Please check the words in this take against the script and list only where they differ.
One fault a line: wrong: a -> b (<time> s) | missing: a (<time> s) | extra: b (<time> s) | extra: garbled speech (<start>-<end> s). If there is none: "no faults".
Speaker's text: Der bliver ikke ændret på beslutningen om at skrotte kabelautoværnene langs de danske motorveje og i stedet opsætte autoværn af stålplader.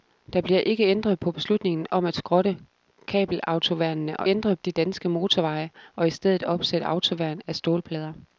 wrong: langs -> ændret (4.3 s)